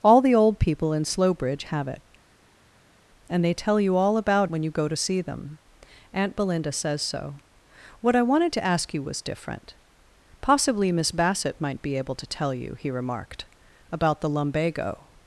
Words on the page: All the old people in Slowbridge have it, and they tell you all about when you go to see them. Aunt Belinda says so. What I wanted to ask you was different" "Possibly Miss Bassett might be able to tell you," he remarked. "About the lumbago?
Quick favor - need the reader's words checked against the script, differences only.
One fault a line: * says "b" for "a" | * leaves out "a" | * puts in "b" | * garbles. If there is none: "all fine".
all fine